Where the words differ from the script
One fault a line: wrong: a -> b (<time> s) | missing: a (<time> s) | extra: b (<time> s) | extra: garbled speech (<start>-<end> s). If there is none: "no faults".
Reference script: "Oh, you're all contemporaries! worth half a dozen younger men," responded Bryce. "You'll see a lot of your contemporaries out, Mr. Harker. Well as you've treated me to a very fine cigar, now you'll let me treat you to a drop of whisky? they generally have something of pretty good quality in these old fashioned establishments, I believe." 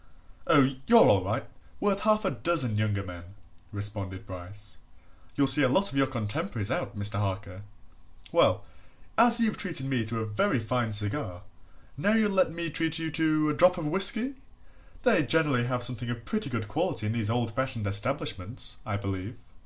wrong: contemporaries -> right (1.2 s)